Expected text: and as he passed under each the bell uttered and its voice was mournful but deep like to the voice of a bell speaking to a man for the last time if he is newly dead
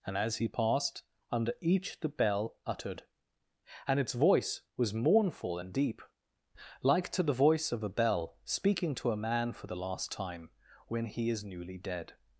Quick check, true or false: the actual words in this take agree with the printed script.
false